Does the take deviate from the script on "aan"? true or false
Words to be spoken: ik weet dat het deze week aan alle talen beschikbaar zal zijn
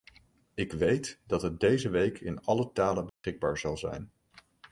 true